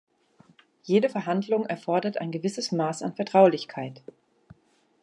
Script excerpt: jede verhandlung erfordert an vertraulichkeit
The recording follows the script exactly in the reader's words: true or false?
false